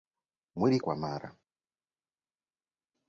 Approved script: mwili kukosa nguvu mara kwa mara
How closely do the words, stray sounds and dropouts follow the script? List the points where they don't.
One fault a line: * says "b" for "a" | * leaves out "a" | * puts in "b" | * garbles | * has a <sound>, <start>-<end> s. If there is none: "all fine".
* leaves out "kukosa nguvu mara"